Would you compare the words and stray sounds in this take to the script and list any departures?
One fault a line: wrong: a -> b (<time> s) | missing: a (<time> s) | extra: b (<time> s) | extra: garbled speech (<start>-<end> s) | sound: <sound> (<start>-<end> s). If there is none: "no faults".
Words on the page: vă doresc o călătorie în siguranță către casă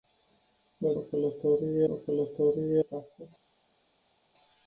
wrong: doresc -> călătorie (1.0 s)
missing: în siguranță către (2.8 s)